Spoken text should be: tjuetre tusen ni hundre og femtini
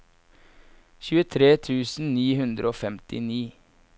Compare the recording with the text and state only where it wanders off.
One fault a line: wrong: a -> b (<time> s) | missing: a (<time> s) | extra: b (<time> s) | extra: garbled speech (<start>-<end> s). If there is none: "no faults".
no faults